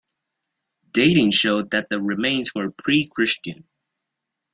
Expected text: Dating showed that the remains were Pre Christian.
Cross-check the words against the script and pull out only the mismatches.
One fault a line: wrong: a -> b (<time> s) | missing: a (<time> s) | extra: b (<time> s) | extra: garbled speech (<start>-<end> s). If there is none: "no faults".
no faults